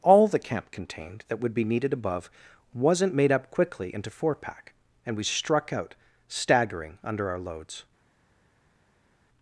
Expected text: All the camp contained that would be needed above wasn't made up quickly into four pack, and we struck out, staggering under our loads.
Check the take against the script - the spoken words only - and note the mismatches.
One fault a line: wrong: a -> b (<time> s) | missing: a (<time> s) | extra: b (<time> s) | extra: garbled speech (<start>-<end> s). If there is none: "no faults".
no faults